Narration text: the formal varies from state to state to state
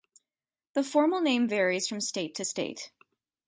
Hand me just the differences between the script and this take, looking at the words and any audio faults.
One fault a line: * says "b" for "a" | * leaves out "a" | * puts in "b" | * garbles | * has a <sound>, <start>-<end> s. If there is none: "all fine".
* puts in "name"
* leaves out "to state"